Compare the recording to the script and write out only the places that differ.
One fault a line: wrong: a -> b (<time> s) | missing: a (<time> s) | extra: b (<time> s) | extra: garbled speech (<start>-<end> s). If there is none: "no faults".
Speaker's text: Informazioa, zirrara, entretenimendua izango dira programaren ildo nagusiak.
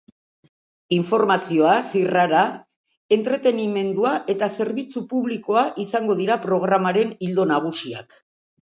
extra: eta zerbitzu publikoa (4.4 s)